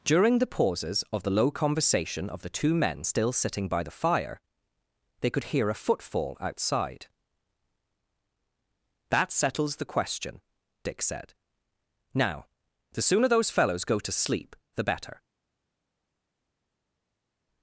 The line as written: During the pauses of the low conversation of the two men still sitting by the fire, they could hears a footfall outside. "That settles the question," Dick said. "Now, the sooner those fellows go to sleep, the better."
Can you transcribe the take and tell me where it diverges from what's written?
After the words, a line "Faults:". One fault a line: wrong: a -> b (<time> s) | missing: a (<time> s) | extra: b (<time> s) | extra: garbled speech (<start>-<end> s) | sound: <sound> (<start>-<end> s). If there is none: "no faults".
During the pauses of the low conversation of the two men still sitting by the fire, they could hear a footfall outside. "That settles the question," Dick said. "Now, the sooner those fellows go to sleep, the better."
Faults:
wrong: hears -> hear (5.4 s)